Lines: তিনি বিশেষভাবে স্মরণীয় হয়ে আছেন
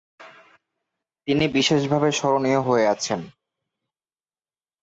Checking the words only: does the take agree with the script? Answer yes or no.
yes